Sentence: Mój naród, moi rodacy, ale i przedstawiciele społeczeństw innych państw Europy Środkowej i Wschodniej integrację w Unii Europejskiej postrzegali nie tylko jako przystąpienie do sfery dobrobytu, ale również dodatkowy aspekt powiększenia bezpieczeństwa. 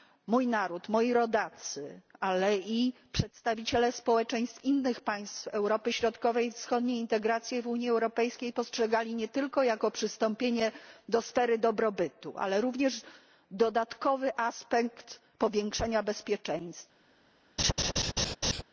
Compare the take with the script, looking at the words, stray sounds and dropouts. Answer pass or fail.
fail